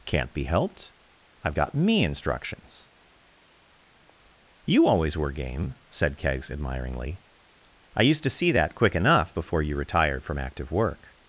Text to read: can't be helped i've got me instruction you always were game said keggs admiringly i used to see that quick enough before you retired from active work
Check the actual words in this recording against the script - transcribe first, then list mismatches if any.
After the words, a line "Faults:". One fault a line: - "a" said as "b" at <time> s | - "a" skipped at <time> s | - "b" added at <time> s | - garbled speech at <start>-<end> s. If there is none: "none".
can't be helped i've got me instructions you always were game said keggs admiringly i used to see that quick enough before you retired from active work
Faults:
- "instruction" said as "instructions" at 2.0 s